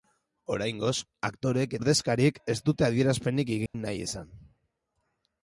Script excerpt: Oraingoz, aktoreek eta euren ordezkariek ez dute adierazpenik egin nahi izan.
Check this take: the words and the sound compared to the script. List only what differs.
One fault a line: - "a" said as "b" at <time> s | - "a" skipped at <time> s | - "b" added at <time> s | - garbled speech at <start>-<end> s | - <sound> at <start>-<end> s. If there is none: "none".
- "eta euren" skipped at 1.8 s
- dropout at 3.7-3.7 s